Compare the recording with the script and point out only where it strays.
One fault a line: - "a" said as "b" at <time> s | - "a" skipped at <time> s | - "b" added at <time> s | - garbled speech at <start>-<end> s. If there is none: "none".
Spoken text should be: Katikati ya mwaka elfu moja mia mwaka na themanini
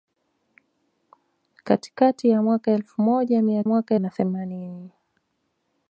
none